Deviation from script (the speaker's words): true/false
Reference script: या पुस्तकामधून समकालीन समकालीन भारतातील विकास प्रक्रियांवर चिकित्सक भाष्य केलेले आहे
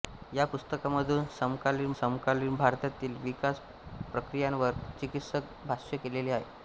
false